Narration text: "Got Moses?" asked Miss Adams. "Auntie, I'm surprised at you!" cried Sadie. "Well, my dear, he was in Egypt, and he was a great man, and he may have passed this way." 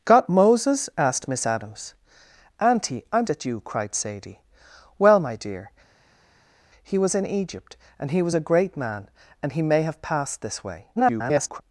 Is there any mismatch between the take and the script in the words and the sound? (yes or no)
yes